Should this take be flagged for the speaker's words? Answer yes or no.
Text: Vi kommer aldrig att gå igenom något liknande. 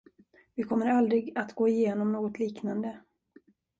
no